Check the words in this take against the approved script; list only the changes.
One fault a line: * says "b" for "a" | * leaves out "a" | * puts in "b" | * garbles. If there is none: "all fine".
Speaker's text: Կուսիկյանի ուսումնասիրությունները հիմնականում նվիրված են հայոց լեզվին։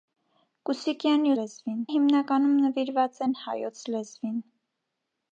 * says "լեզվին" for "ուսումնասիրությունները"